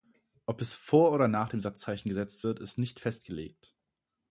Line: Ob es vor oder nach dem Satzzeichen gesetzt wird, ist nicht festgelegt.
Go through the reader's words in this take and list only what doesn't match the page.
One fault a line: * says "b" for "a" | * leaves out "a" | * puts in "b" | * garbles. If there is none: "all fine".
all fine